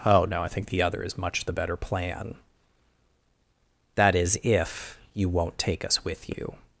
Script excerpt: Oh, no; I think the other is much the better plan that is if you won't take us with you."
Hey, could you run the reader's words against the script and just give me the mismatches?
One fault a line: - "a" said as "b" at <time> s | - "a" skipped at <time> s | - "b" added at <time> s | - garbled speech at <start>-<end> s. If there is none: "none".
none